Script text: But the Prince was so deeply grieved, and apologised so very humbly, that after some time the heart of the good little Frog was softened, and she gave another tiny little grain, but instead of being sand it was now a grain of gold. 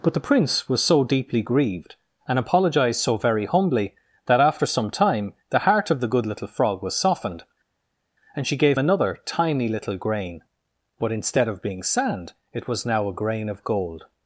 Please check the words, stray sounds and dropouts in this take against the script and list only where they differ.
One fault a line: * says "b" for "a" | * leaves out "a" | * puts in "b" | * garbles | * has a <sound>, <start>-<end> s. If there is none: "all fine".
all fine